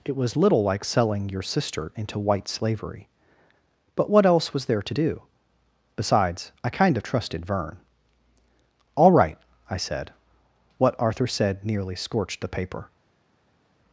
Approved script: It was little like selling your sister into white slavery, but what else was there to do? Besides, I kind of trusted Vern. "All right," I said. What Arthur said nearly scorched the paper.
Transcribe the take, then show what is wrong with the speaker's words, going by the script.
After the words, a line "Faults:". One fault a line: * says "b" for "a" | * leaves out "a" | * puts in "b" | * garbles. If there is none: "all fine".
It was little like selling your sister into white slavery, but what else was there to do? Besides, I kind of trusted Vern. "All right," I said. What Arthur said nearly scorched the paper.
Faults:
all fine